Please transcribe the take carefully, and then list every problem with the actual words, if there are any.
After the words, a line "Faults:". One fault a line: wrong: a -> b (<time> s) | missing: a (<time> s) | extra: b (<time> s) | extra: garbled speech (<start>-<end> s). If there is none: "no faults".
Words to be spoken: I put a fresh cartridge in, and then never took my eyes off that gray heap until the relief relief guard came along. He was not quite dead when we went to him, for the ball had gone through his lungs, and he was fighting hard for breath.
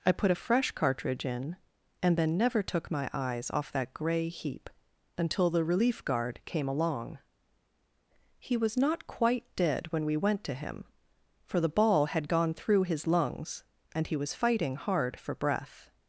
I put a fresh cartridge in, and then never took my eyes off that gray heap until the relief guard came along. He was not quite dead when we went to him, for the ball had gone through his lungs, and he was fighting hard for breath.
Faults:
missing: relief (6.0 s)